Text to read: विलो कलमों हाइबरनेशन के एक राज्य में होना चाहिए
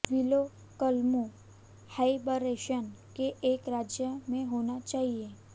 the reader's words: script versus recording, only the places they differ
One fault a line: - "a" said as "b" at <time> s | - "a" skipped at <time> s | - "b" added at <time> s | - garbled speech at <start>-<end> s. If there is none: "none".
none